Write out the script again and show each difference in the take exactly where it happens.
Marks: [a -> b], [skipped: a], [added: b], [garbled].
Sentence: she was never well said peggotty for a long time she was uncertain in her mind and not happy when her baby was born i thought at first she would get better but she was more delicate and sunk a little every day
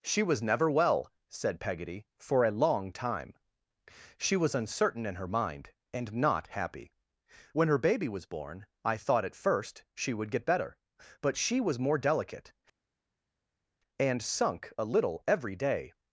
she was never well said peggotty for a long time she was uncertain in her mind and not happy when her baby was born i thought at first she would get better but she was more delicate and sunk a little every day